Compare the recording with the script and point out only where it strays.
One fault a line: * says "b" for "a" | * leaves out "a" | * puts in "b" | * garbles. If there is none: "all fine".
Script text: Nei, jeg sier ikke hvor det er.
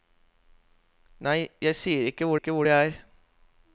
* puts in "ikke hvor"